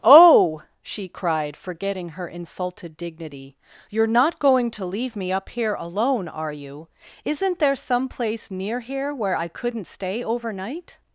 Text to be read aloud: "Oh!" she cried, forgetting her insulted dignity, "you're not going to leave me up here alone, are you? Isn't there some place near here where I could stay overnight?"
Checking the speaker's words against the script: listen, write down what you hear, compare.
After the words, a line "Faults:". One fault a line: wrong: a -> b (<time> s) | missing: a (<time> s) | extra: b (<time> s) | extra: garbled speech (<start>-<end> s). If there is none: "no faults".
"Oh!" she cried, forgetting her insulted dignity, "you're not going to leave me up here alone, are you? Isn't there some place near here where I couldn't stay overnight?"
Faults:
wrong: could -> couldn't (9.5 s)